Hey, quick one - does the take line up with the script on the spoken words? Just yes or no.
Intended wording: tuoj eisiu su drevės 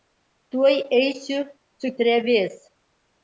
yes